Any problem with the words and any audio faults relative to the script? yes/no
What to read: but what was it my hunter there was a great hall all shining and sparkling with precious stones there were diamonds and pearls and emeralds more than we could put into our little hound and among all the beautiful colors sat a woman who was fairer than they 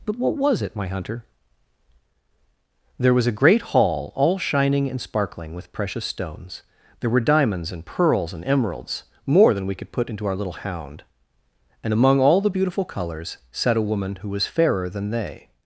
no